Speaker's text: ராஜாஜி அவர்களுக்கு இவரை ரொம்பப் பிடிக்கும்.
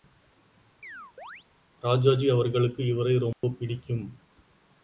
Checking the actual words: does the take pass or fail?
pass